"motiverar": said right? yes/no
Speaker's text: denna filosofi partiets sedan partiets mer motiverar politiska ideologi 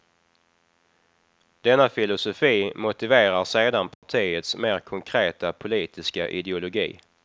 no